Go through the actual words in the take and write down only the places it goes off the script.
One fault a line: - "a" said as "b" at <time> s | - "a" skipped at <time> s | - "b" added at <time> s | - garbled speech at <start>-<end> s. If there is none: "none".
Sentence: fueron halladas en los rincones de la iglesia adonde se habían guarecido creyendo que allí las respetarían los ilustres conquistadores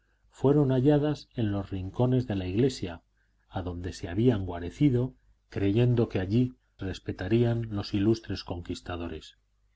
- "las" skipped at 6.5 s